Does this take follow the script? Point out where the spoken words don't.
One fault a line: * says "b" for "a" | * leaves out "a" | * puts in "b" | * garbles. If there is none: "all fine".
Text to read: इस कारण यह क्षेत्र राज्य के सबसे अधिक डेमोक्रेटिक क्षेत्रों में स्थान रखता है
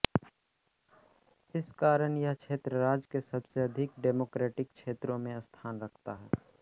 all fine